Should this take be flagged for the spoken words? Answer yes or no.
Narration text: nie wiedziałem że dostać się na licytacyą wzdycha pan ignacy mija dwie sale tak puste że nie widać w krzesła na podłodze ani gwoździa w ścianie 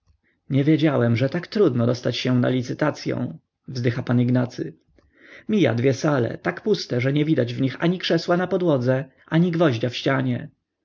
yes